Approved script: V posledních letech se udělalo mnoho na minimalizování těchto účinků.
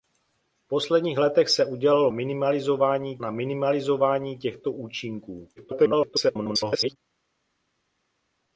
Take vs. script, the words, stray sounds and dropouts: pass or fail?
fail